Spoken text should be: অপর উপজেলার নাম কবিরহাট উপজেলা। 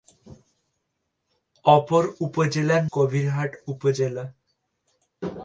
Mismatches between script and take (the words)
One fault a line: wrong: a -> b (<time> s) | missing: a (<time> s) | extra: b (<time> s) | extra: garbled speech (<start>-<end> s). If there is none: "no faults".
missing: নাম (2.8 s)